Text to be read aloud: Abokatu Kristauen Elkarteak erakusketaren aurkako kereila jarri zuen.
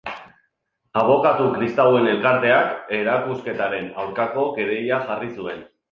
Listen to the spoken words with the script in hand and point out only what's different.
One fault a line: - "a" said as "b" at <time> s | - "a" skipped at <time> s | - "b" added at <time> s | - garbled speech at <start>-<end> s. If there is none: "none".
none